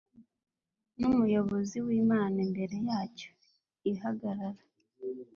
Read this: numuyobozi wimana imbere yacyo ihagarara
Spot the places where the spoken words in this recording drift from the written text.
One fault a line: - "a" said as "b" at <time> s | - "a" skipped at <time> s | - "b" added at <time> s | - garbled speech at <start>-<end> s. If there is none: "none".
none